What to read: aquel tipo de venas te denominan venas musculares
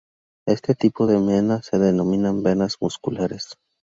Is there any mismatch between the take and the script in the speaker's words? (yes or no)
yes